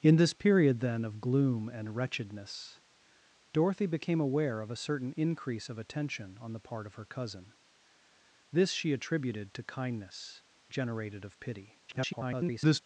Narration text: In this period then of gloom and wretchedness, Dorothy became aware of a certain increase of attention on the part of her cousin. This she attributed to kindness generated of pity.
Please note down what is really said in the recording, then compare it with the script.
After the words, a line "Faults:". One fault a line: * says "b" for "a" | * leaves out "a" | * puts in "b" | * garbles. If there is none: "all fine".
In this period then of gloom and wretchedness, Dorothy became aware of a certain increase of attention on the part of her cousin. This she attributed to kindness generated of pity. [garbled]
Faults:
* garbles